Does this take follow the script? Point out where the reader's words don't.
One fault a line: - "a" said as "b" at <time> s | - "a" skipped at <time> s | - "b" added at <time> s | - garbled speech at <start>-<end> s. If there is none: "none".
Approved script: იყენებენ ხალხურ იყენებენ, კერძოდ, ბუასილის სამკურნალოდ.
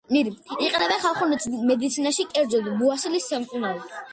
- "იყენებენ" said as "მედიცინაში" at 1.7 s